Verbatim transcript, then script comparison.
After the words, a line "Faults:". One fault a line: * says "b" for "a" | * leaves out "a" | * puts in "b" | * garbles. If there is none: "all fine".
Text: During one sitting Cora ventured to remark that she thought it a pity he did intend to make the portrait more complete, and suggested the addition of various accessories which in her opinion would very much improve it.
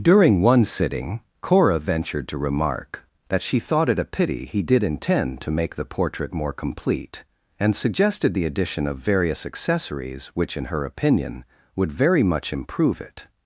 During one sitting Cora ventured to remark that she thought it a pity he did intend to make the portrait more complete, and suggested the addition of various accessories which in her opinion would very much improve it.
Faults:
all fine